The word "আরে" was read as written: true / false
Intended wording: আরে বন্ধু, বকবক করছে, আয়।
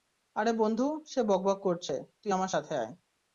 true